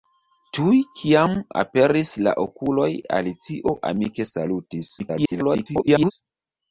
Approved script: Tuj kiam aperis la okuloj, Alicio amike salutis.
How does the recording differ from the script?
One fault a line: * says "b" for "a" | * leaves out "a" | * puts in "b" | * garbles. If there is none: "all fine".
* garbles